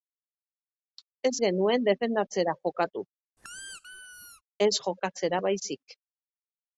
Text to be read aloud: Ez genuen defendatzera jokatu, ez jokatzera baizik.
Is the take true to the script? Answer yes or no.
yes